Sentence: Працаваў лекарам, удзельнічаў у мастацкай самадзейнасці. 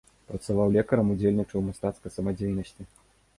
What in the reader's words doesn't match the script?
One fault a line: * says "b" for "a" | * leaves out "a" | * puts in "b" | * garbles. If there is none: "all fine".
all fine